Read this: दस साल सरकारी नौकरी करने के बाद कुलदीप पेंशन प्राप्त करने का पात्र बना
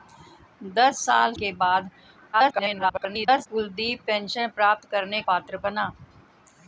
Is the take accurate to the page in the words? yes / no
no